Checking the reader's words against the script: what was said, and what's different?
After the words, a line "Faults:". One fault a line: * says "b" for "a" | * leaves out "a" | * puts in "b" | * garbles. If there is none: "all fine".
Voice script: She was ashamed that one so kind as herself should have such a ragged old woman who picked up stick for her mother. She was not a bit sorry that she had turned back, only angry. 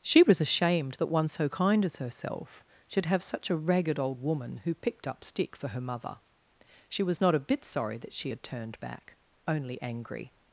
She was ashamed that one so kind as herself should have such a ragged old woman who picked up stick for her mother. She was not a bit sorry that she had turned back, only angry.
Faults:
all fine